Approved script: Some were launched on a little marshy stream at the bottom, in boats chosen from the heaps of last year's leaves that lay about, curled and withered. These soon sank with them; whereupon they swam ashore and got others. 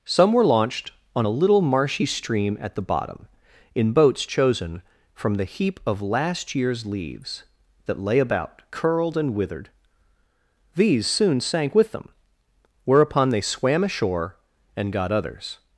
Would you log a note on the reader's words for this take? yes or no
yes